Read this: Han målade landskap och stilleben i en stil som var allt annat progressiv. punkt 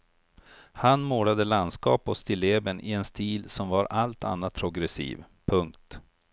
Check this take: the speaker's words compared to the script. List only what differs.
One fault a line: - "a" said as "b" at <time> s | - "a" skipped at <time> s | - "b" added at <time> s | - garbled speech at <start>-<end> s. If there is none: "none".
none